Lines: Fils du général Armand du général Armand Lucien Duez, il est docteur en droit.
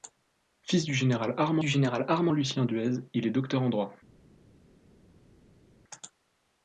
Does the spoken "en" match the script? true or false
true